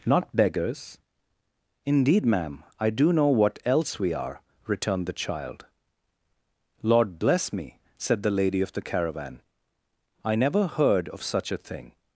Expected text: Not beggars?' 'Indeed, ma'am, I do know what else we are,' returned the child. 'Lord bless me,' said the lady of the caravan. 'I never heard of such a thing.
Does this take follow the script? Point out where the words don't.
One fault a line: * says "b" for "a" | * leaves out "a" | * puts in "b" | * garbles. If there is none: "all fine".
all fine